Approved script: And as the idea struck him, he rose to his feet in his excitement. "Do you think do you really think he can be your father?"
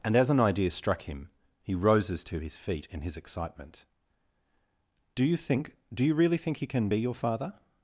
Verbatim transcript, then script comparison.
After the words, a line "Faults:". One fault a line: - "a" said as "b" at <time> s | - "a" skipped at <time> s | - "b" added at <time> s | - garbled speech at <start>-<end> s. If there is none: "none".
And as an idea struck him, he roses to his feet in his excitement. "Do you think do you really think he can be your father?"
Faults:
- "the" said as "an" at 0.3 s
- "rose" said as "roses" at 1.8 s